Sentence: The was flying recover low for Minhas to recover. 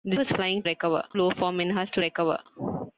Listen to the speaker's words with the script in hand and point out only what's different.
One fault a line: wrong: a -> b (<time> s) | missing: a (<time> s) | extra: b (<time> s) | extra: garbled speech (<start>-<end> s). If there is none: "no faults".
no faults